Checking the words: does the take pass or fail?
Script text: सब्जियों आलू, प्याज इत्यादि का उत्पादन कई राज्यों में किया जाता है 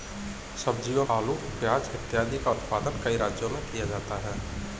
pass